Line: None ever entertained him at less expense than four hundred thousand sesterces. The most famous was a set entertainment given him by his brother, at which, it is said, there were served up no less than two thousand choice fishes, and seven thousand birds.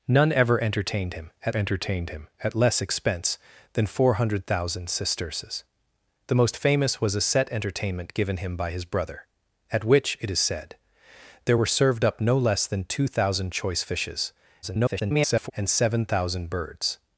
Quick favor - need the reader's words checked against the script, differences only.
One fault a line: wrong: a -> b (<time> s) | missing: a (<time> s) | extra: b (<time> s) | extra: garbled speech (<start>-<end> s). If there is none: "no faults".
extra: entertained him at (1.5 s)
extra: garbled speech (14.6-15.5 s)